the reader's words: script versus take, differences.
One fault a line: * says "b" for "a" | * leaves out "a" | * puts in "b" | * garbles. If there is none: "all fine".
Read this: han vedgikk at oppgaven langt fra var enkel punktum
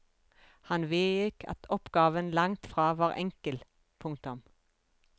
all fine